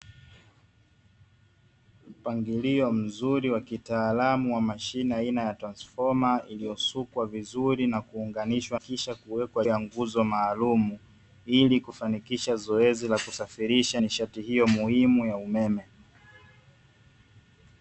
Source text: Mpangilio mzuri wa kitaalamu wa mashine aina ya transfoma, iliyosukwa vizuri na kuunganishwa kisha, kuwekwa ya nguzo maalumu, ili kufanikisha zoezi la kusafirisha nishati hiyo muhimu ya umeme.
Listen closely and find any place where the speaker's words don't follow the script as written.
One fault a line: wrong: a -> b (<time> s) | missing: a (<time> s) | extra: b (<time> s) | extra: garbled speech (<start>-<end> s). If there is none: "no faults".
no faults